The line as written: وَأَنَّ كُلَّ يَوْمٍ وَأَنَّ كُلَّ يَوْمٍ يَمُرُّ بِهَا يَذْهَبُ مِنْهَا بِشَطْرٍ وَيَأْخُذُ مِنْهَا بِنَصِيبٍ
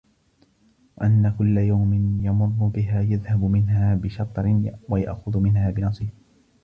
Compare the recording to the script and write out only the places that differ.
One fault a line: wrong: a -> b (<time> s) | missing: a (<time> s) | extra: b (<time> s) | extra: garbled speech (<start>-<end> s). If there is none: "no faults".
missing: وَأَنَّ كُلَّ يَوْمٍ (1.9 s)